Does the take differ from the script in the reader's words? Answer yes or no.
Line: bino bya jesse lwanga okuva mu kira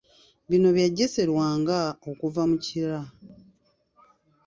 no